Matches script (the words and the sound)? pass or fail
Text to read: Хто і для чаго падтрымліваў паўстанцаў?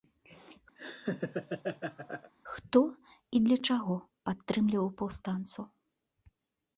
fail